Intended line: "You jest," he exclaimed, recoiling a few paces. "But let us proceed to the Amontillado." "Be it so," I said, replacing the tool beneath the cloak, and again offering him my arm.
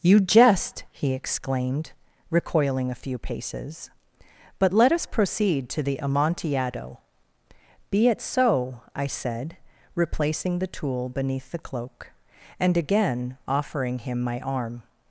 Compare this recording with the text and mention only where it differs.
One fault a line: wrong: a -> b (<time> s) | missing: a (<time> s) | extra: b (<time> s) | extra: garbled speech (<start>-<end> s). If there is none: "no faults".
no faults